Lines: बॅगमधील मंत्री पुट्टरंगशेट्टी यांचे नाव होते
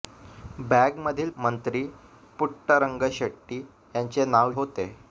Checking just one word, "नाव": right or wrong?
right